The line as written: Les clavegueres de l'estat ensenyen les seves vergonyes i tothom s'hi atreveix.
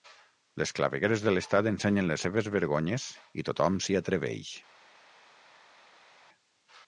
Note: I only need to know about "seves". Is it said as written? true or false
true